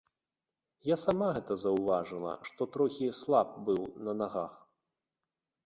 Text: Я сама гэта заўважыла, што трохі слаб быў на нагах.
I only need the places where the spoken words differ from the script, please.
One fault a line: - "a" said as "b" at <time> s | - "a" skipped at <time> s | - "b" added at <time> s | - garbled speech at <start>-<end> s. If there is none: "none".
none